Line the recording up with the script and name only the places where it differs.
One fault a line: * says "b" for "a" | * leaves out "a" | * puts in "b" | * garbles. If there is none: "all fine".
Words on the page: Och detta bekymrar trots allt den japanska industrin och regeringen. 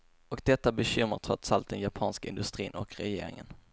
all fine